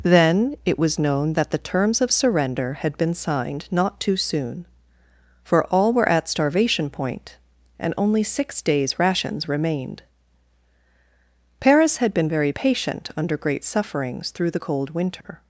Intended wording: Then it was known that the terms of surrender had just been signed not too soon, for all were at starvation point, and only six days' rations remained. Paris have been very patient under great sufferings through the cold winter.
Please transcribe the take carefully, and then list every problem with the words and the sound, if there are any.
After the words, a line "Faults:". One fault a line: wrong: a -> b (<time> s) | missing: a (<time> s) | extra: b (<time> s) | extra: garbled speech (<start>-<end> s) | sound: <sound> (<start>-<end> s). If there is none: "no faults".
Then it was known that the terms of surrender had been signed not too soon, for all were at starvation point, and only six days' rations remained. Paris had been very patient under great sufferings through the cold winter.
Faults:
missing: just (3.0 s)
wrong: have -> had (12.0 s)
sound: dropout (15.2-15.2 s)